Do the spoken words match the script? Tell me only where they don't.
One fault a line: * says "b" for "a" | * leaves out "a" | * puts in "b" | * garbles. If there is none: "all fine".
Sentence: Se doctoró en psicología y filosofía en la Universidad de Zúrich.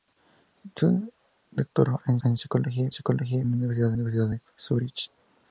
* puts in "en"
* says "psicología" for "filosofía"
* puts in "Universidad"